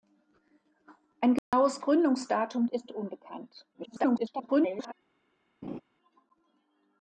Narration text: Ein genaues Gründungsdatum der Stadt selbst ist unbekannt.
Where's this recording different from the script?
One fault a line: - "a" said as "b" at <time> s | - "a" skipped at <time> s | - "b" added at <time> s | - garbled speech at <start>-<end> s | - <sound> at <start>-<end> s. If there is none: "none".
- dropout at 1.4-1.5 s
- "der Stadt selbst" skipped at 2.6 s
- garbled speech at 3.7-4.9 s
- laugh at 5.6-5.8 s